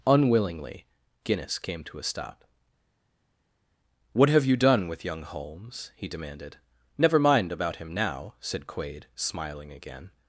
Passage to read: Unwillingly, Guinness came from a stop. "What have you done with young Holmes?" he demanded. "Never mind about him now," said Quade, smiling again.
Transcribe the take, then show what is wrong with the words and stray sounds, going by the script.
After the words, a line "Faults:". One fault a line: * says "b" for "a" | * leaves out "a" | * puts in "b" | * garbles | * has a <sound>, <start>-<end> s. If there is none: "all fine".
Unwillingly, Guinness came to a stop. "What have you done with young Holmes?" he demanded. "Never mind about him now," said Quade, smiling again.
Faults:
* says "to" for "from"